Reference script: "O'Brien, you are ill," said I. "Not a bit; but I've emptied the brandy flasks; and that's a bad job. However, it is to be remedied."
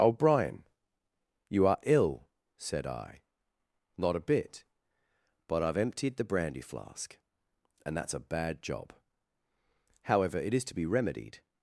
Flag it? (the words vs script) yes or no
yes